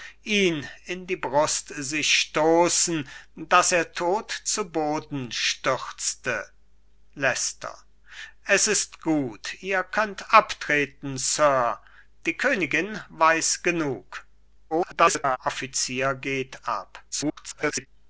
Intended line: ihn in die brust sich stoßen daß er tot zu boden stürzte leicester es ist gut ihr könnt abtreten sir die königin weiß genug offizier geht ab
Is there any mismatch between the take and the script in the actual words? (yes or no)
yes